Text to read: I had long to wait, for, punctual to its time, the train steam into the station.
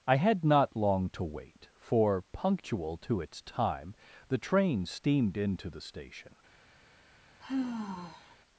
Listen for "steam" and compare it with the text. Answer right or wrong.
wrong